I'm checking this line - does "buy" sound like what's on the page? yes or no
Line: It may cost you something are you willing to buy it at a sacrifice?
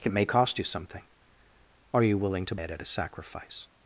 no